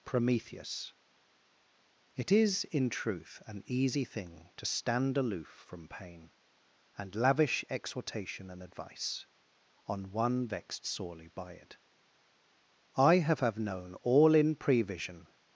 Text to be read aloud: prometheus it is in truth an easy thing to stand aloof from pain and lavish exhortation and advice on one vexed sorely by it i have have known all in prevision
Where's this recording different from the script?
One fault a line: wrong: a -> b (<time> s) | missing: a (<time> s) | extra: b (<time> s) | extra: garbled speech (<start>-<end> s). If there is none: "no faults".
no faults